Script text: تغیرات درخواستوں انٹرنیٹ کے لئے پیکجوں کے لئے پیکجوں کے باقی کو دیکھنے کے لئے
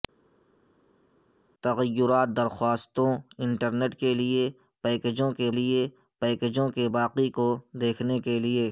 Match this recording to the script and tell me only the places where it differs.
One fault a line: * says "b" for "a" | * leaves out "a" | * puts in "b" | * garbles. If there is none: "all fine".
all fine